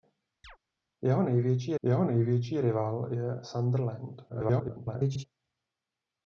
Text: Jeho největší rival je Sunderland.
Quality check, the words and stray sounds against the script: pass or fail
fail